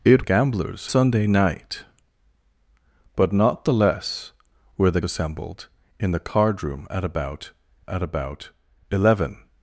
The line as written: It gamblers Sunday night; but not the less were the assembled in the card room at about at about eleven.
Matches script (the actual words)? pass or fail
pass